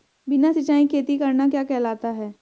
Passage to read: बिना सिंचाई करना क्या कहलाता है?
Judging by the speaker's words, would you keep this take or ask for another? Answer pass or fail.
fail